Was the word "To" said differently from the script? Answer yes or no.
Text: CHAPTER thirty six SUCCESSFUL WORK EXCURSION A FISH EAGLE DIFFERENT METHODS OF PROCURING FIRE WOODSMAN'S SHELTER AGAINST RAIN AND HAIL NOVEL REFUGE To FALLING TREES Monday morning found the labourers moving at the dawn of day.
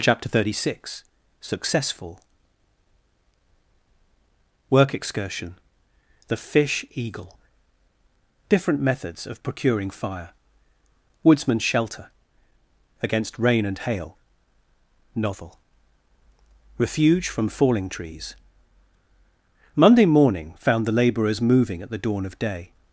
yes